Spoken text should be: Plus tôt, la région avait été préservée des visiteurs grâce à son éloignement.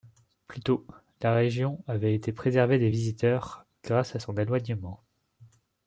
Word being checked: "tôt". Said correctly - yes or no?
yes